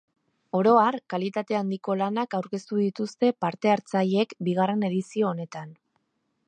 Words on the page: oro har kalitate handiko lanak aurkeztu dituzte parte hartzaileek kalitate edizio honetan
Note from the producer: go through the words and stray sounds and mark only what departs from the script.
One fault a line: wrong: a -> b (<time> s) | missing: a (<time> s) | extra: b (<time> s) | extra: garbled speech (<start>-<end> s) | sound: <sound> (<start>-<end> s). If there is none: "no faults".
wrong: kalitate -> bigarren (4.5 s)